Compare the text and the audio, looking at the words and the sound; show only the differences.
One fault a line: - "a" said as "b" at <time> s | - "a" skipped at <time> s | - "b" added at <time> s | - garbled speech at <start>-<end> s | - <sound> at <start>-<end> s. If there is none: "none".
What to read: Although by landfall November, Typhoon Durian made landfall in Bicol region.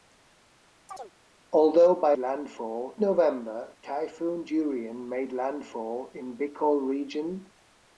- chirp at 0.9-1.1 s